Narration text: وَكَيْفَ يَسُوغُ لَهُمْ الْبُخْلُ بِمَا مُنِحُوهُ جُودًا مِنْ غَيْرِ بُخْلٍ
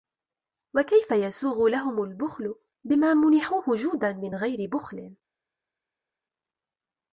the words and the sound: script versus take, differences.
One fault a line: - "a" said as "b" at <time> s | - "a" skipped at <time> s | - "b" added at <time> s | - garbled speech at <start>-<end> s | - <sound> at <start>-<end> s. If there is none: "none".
none